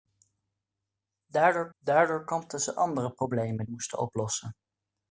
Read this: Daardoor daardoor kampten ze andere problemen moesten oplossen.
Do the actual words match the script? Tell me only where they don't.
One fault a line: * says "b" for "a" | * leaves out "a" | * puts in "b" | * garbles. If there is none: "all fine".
all fine